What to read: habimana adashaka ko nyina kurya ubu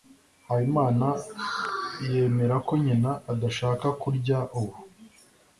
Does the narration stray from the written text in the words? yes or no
yes